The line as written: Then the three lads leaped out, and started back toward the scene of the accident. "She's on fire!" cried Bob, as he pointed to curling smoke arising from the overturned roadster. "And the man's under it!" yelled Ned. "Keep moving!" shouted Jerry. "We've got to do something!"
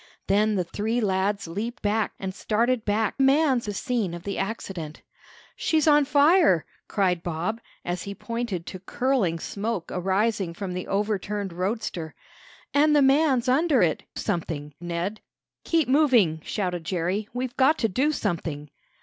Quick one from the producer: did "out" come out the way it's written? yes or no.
no